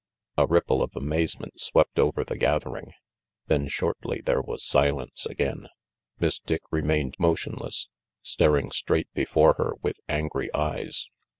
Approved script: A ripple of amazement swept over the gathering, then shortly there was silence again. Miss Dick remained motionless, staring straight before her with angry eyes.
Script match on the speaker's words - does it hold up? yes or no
yes